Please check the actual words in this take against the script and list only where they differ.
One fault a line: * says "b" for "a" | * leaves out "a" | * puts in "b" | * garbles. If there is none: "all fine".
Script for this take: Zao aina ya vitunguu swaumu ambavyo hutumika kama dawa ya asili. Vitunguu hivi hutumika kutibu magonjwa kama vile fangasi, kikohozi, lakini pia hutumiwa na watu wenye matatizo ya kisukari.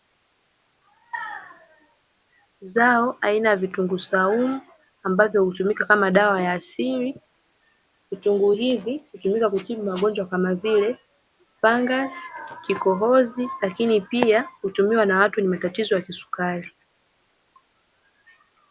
all fine